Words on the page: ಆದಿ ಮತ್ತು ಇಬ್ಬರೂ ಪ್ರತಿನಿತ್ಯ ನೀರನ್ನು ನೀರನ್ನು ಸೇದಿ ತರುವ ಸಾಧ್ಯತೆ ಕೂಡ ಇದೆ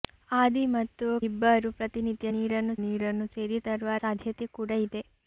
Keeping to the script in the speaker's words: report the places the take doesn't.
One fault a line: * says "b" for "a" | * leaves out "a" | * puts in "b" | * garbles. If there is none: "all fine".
all fine